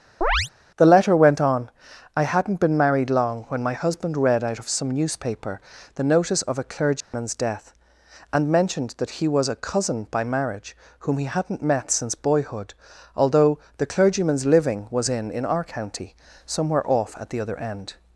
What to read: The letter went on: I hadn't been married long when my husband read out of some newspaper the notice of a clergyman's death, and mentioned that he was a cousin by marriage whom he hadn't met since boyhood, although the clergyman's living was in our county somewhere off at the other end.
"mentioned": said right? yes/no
yes